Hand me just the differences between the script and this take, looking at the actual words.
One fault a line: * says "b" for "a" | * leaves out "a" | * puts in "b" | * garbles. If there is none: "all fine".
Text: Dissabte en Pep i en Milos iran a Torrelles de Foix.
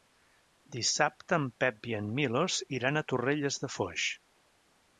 all fine